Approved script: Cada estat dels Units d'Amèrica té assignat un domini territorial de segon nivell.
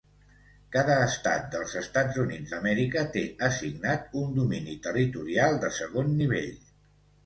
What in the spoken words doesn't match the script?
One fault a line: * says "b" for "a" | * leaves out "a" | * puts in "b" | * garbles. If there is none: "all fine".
* puts in "Estats"